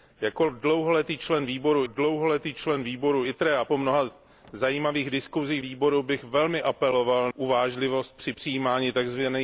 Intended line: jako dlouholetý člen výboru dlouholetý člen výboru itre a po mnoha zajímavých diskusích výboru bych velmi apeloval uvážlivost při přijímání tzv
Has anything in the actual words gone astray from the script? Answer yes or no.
no